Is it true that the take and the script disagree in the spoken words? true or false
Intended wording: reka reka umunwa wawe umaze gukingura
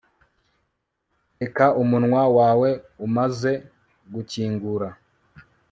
true